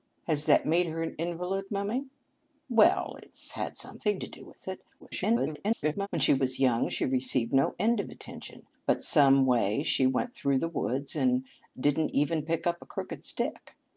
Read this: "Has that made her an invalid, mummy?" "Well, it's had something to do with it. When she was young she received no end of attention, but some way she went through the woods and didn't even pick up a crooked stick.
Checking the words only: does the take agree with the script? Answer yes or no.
no